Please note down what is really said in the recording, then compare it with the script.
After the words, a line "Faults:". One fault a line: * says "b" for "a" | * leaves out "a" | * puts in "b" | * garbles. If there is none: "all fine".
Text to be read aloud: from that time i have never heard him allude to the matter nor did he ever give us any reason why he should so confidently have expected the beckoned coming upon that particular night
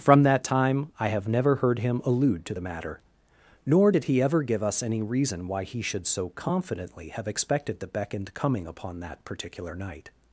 from that time i have never heard him allude to the matter nor did he ever give us any reason why he should so confidently have expected the beckoned coming upon that particular night
Faults:
all fine